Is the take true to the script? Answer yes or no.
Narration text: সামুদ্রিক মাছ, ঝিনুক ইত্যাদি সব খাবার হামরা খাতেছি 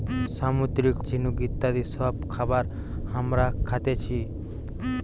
no